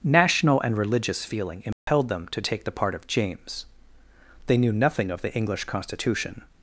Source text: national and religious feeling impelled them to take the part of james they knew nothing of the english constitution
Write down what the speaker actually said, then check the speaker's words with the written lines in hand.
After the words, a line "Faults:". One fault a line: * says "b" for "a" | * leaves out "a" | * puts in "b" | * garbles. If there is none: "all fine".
national and religious feeling impelled them to take the part of james they knew nothing of the english constitution
Faults:
all fine